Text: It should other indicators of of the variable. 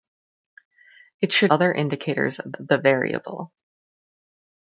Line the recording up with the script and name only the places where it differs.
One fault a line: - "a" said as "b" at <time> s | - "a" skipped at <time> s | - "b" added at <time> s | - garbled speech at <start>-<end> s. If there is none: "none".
none